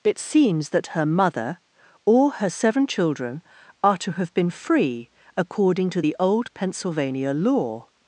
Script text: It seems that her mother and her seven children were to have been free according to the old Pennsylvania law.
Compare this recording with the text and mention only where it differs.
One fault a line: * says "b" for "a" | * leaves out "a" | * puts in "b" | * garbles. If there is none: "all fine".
* says "or" for "and"
* says "are" for "were"